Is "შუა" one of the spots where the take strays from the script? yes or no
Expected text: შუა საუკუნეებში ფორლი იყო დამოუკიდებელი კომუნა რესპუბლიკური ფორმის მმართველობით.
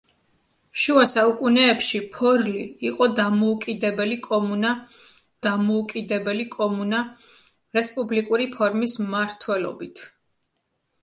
no